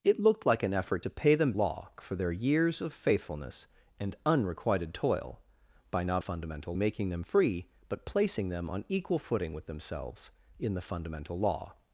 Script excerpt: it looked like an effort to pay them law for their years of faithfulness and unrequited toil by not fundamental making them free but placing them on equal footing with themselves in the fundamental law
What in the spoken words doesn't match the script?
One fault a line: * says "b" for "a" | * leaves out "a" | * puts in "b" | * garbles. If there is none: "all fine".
all fine